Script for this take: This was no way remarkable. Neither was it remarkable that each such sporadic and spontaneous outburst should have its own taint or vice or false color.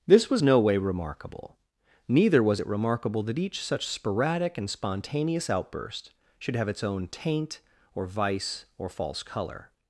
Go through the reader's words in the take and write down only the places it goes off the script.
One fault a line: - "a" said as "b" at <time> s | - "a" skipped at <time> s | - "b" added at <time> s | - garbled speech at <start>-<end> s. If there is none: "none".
none